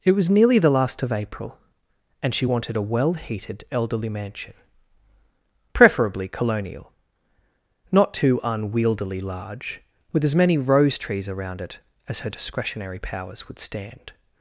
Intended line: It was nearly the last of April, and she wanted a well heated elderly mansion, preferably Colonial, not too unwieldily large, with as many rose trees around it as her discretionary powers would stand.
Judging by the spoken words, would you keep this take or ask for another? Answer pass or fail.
pass